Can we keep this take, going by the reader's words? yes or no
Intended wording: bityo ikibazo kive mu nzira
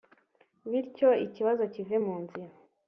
yes